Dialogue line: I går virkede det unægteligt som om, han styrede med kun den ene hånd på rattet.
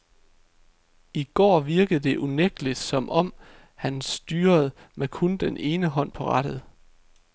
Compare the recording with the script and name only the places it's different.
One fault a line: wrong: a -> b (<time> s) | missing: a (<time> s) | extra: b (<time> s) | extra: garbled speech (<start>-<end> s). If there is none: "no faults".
no faults